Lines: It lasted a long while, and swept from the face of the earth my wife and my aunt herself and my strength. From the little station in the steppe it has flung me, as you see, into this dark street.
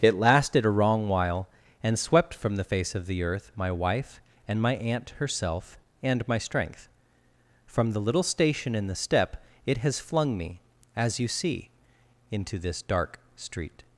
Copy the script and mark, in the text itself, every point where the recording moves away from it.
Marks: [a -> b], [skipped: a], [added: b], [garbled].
It lasted a [long -> wrong] while, and swept from the face of the earth my wife and my aunt herself and my strength. From the little station in the steppe it has flung me, as you see, into this dark street.